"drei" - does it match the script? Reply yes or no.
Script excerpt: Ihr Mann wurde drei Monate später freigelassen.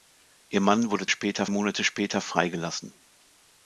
no